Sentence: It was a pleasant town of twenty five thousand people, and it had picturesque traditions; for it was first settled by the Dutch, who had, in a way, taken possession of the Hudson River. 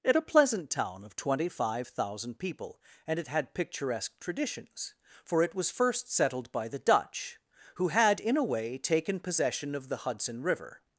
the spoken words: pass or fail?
fail